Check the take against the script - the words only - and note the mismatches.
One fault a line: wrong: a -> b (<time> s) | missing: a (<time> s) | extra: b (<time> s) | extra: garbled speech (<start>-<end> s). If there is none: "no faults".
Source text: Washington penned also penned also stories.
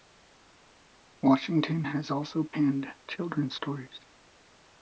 wrong: penned -> has (1.8 s)
wrong: also -> children's (3.1 s)